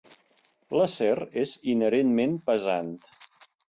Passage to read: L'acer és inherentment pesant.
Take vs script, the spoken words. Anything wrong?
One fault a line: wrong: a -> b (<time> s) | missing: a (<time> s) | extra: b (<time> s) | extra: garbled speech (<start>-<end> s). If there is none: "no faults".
no faults